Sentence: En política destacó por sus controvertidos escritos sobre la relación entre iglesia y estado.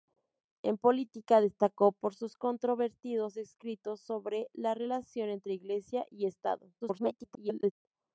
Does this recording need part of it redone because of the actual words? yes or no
yes